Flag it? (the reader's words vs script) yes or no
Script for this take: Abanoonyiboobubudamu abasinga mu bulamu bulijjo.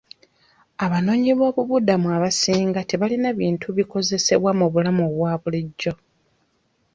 yes